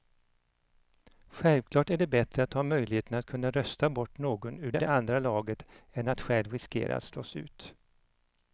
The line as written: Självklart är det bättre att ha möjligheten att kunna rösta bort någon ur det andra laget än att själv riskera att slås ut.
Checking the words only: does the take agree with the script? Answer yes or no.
no